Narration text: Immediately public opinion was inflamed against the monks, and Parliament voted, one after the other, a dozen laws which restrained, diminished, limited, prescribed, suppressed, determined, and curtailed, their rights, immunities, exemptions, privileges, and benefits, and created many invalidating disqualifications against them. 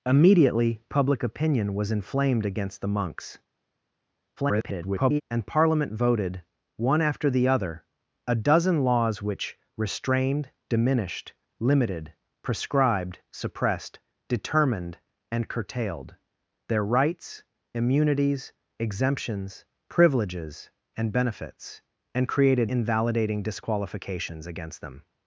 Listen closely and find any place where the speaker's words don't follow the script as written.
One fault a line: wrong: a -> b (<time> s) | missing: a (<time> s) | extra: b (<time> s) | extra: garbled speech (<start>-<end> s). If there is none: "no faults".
extra: garbled speech (4.4-5.2 s)
missing: many (22.7 s)